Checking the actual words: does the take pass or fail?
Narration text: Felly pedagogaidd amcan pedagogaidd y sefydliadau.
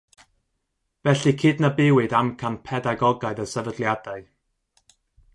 fail